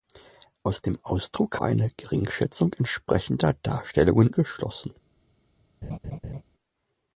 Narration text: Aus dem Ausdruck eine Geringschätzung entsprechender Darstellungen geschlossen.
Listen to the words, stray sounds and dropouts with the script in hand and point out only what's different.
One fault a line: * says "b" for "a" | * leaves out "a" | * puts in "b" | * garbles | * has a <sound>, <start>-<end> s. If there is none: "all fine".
* has a laugh, 5.8-6.4 s